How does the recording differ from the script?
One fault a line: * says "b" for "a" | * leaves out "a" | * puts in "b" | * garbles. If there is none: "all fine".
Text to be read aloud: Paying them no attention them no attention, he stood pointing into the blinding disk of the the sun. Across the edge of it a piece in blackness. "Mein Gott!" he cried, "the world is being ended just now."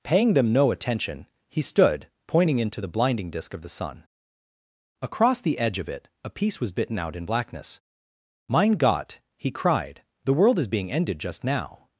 * leaves out "them no attention"
* leaves out "the"
* puts in "was bitten out"